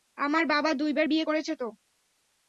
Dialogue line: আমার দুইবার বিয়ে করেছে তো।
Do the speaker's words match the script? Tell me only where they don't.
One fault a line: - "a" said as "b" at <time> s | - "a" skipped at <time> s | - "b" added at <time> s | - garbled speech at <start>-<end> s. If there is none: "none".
- "বাবা" added at 0.5 s